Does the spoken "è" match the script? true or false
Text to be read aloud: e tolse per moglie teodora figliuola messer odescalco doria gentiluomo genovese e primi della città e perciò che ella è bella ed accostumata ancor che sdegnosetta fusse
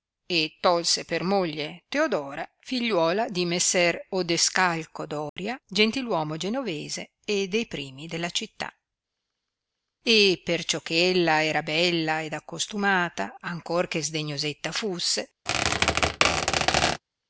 false